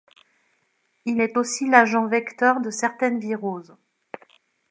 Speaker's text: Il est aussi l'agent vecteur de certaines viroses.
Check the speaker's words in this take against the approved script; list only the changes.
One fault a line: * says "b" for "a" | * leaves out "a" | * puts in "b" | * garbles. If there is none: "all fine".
all fine